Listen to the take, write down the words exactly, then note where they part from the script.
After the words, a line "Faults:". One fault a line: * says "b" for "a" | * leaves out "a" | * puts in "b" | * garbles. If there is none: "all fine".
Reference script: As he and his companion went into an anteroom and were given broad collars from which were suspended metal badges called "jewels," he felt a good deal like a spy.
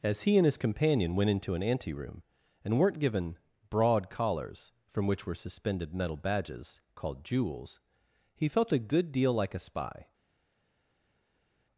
As he and his companion went into an anteroom and weren't given broad collars from which were suspended metal badges called "jewels," he felt a good deal like a spy.
Faults:
* says "weren't" for "were"